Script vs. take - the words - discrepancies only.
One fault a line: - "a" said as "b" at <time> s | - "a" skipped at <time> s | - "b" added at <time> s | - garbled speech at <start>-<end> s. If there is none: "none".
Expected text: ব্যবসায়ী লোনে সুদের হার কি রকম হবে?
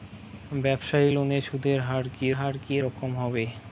- "হার কি" added at 2.3 s